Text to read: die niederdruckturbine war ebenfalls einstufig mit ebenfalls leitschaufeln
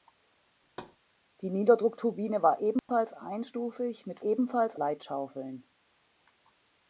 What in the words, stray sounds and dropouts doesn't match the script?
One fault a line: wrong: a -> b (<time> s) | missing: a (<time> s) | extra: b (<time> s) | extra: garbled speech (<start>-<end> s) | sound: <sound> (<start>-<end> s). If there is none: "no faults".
sound: thud (0.6-1.0 s)
sound: dropout (2.8-2.9 s)